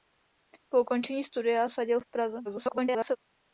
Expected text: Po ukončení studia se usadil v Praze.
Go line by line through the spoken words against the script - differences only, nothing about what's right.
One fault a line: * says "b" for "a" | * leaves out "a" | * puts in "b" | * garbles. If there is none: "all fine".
* leaves out "se"
* garbles